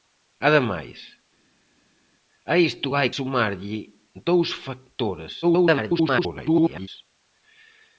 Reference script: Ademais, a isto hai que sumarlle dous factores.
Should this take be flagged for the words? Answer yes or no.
yes